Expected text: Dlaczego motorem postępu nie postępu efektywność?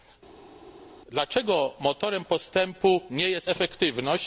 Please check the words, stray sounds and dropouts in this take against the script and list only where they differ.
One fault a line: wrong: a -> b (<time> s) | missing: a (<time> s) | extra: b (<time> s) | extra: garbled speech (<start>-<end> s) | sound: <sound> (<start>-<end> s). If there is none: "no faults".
wrong: postępu -> jest (3.3 s)